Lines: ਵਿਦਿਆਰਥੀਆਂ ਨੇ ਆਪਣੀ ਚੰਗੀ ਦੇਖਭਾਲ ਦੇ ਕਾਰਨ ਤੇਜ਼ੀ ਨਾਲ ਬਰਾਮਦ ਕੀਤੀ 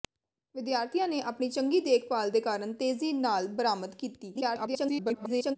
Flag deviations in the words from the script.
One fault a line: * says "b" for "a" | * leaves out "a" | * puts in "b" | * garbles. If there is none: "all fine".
* garbles